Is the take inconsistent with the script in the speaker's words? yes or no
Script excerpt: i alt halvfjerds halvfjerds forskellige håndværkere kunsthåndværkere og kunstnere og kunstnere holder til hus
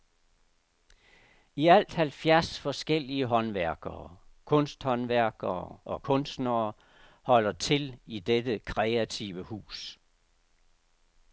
yes